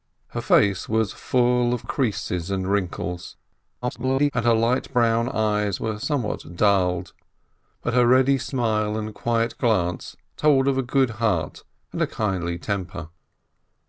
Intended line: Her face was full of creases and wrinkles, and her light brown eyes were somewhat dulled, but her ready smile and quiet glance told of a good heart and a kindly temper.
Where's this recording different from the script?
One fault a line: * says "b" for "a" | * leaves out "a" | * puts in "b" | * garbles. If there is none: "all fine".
* garbles